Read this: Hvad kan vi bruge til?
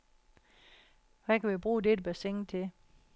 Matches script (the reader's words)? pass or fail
fail